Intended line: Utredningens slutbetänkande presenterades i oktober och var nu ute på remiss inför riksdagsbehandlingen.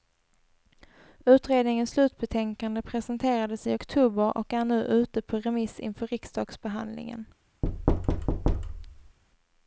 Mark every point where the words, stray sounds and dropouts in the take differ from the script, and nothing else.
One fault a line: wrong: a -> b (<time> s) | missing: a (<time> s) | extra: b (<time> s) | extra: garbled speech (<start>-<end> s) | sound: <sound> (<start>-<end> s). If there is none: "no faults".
wrong: var -> är (4.5 s)
sound: thud (7.6-9.2 s)